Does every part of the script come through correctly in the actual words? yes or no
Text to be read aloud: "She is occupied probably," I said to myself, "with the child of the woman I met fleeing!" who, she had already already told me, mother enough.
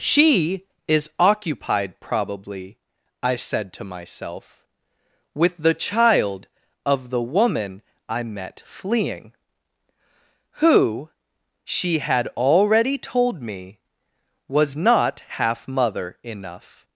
no